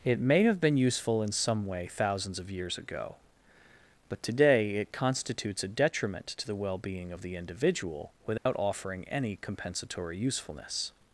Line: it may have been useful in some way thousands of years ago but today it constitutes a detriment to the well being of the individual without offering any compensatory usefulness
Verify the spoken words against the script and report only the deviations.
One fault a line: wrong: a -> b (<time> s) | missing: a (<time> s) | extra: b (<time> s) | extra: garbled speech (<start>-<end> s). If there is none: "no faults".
no faults